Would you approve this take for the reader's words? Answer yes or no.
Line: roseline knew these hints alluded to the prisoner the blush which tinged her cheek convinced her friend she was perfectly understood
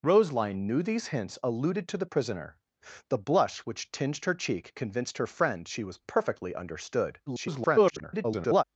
no